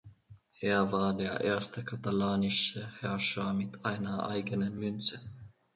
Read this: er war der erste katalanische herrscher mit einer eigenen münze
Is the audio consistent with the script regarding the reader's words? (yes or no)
yes